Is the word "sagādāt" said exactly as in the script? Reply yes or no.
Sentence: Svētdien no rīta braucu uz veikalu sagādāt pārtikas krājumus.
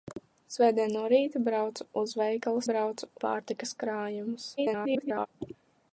no